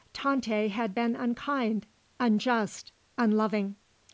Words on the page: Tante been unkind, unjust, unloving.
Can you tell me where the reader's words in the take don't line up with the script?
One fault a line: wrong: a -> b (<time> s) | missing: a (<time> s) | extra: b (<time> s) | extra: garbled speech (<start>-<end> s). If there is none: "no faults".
extra: had (0.7 s)